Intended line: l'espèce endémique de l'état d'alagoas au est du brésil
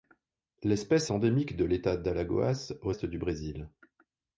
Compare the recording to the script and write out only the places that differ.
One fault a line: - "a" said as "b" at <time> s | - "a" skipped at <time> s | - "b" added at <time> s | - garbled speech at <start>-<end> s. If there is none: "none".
none